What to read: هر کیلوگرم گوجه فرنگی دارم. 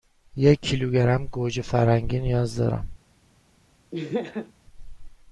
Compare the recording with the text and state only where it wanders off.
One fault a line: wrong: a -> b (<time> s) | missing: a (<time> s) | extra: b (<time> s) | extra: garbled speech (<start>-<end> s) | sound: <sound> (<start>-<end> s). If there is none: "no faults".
wrong: هر -> یک (0.3 s)
extra: نیاز (2.2 s)
sound: laugh (3.9-4.5 s)